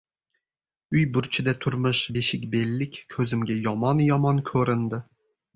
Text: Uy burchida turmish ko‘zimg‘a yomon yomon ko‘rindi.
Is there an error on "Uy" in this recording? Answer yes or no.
no